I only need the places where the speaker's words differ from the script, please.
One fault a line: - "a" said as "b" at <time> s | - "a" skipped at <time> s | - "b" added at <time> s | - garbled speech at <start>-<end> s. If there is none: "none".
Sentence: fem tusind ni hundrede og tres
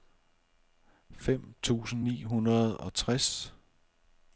none